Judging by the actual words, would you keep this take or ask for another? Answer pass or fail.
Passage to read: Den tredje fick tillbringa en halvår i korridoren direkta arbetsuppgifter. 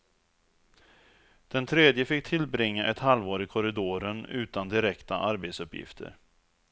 fail